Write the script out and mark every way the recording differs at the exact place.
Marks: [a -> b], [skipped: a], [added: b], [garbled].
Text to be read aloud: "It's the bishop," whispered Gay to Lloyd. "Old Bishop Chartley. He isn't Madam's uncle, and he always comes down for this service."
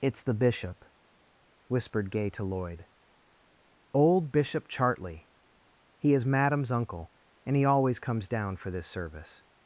"It's the bishop," whispered Gay to Lloyd. "Old Bishop Chartley. He [isn't -> is] Madam's uncle, and he always comes down for this service."